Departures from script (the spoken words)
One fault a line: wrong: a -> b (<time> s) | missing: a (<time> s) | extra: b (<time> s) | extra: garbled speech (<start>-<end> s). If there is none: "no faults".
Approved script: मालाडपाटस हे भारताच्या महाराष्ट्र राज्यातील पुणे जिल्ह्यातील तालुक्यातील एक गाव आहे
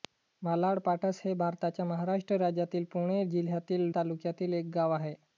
no faults